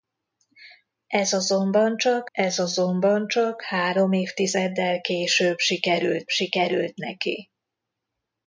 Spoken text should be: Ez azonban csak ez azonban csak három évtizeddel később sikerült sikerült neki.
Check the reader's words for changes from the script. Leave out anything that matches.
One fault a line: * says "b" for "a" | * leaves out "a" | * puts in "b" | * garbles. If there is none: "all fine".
all fine